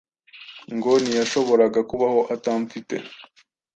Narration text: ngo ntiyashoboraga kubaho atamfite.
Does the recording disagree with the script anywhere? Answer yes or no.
no